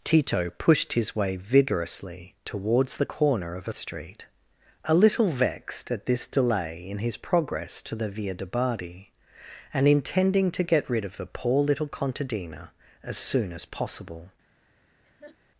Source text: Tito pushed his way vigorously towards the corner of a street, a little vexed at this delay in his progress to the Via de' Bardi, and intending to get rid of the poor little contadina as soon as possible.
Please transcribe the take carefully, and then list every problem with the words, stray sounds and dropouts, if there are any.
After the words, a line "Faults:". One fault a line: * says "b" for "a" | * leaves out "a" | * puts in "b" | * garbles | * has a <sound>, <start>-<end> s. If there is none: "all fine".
Tito pushed his way vigorously towards the corner of a street, a little vexed at this delay in his progress to the Via de' Bardi, and intending to get rid of the poor little contadina as soon as possible.
Faults:
* has a laugh, 15.0-15.4 s